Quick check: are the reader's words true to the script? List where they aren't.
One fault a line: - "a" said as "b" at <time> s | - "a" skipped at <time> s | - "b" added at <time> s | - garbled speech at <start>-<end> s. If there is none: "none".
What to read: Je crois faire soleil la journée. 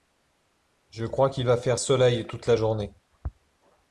- "qu'il va" added at 1.3 s
- "toute" added at 2.3 s